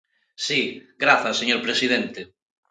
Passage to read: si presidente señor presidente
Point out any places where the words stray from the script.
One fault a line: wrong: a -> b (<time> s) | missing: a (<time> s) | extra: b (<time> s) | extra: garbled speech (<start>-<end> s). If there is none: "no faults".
wrong: presidente -> grazas (1.0 s)